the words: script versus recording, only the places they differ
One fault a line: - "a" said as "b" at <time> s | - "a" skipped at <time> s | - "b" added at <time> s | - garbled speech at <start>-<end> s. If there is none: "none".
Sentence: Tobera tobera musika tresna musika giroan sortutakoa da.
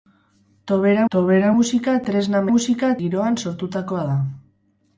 none